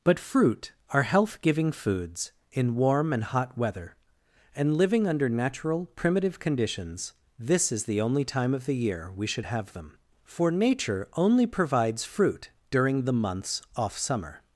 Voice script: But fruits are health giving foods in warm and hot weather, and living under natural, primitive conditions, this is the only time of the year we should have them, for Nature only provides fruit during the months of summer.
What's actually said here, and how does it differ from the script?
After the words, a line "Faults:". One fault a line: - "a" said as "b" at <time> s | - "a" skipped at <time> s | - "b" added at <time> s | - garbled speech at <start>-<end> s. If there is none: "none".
But fruit are health giving foods in warm and hot weather, and living under natural, primitive conditions, this is the only time of the year we should have them, for Nature only provides fruit during the months off summer.
Faults:
- "fruits" said as "fruit" at 0.2 s
- "of" said as "off" at 13.7 s